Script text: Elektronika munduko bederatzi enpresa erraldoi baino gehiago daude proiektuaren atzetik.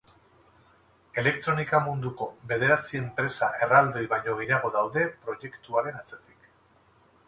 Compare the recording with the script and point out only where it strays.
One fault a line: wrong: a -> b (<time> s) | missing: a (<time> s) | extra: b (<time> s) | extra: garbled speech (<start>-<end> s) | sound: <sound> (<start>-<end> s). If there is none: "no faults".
no faults